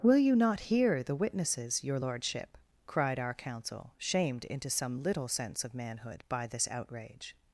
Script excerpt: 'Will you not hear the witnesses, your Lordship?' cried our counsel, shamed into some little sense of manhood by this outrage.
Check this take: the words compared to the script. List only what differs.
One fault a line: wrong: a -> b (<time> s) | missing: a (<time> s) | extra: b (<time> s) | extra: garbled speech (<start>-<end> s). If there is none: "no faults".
no faults